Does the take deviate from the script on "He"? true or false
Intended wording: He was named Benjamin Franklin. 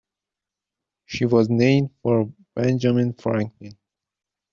true